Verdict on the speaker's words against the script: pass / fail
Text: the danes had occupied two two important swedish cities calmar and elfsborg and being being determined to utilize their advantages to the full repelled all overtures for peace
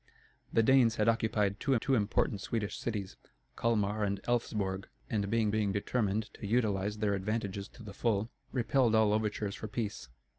pass